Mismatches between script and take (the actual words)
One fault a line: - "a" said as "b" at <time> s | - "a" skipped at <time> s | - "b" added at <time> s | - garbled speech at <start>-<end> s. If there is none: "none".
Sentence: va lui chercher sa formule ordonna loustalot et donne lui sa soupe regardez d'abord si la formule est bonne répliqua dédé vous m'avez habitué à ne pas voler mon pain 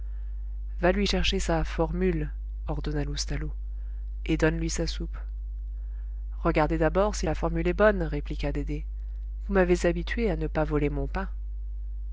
none